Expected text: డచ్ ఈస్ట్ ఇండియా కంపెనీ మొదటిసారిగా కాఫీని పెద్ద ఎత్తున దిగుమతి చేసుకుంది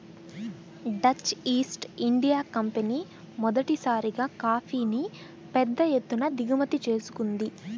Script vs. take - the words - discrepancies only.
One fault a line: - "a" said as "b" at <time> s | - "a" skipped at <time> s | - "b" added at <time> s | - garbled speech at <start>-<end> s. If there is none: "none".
none